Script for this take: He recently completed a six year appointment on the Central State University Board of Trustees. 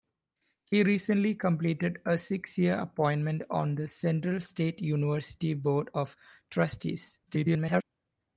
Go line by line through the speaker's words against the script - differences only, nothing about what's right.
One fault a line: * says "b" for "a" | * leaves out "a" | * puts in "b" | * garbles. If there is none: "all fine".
* garbles